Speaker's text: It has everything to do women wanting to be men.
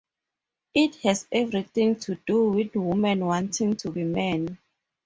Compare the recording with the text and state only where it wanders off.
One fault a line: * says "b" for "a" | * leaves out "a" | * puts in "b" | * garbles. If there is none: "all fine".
* puts in "with"